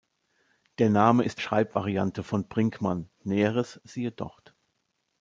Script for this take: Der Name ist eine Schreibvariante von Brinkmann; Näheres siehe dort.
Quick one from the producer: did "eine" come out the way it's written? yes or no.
no